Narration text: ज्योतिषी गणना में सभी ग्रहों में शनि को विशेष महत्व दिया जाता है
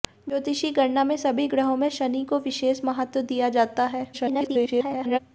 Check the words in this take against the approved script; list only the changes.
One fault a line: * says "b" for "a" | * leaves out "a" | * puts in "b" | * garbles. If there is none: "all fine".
* garbles